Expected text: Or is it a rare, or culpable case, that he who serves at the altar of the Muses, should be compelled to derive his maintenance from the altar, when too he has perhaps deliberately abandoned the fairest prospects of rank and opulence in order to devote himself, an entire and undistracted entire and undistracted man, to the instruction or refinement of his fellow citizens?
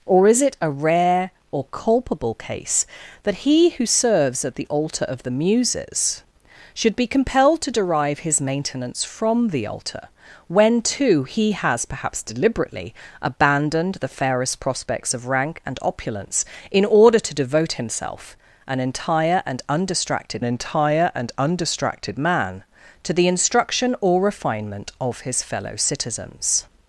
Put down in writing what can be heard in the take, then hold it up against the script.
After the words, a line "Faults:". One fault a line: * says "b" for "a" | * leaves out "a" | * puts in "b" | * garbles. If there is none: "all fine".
Or is it a rare, or culpable case, that he who serves at the altar of the Muses, should be compelled to derive his maintenance from the altar, when too he has perhaps deliberately abandoned the fairest prospects of rank and opulence in order to devote himself, an entire and undistracted entire and undistracted man, to the instruction or refinement of his fellow citizens?
Faults:
all fine